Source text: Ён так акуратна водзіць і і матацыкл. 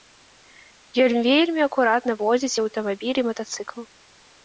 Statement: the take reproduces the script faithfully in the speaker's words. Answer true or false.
false